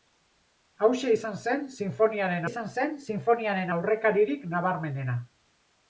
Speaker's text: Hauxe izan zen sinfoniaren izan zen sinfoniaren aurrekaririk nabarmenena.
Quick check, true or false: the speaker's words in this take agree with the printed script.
true